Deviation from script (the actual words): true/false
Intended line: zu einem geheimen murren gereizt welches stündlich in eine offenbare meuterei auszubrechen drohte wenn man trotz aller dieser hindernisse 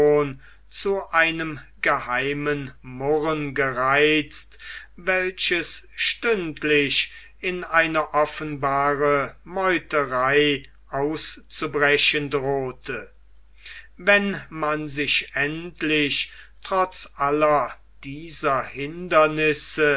true